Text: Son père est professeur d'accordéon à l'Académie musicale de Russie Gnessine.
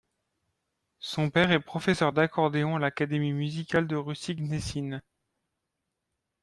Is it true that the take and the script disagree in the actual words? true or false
false